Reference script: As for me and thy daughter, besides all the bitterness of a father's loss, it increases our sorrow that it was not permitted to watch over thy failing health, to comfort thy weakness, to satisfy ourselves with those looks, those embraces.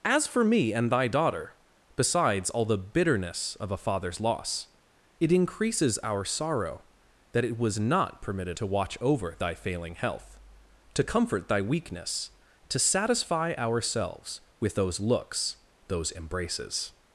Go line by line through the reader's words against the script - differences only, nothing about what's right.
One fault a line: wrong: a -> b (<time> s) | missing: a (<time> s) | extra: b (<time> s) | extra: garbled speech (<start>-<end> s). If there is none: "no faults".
no faults